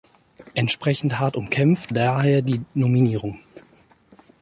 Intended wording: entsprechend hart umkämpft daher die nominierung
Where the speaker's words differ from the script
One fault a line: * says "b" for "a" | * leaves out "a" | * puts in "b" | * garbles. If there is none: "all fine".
all fine